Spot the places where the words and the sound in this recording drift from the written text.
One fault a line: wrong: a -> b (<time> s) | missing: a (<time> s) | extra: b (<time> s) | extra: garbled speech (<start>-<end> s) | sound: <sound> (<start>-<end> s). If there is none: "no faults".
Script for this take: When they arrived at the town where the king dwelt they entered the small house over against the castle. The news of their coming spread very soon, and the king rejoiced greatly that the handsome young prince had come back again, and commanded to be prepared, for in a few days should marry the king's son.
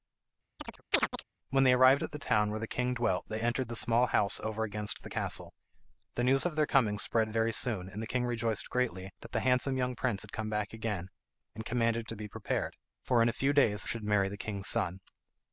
sound: chirp (0.6-1.2 s)